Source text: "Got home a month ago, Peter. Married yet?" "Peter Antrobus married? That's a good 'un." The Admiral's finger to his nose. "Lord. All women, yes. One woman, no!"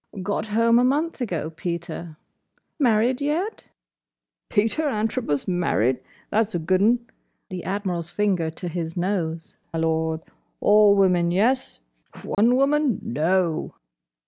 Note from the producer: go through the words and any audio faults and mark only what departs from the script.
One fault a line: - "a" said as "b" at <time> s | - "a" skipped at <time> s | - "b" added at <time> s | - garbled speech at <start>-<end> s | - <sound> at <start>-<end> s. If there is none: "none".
- dropout at 12.3-12.4 s